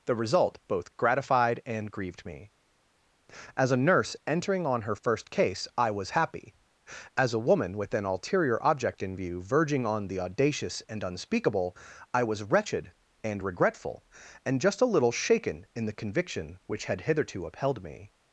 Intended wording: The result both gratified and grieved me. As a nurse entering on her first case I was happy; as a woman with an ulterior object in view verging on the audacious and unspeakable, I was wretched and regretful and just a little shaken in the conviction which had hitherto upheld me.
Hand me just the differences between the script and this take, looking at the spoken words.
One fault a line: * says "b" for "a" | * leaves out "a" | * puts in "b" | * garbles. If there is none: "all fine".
all fine